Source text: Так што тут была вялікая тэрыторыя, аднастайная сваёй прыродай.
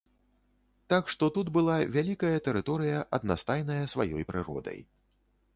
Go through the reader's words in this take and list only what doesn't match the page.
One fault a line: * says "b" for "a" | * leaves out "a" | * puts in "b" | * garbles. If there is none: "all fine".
all fine